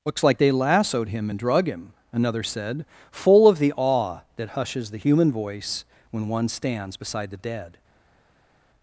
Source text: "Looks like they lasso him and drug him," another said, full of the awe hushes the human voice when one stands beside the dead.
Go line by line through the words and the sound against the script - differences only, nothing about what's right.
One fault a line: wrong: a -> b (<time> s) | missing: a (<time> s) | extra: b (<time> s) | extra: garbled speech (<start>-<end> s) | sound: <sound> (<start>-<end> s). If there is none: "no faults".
wrong: lasso -> lassoed (0.5 s)
extra: that (4.4 s)